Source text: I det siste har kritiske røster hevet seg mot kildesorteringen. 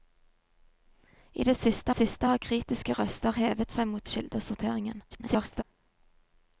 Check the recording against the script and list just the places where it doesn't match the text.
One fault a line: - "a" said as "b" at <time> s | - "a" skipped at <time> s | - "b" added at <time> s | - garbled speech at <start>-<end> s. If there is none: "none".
- "siste" added at 1.9 s
- garbled speech at 5.1-5.6 s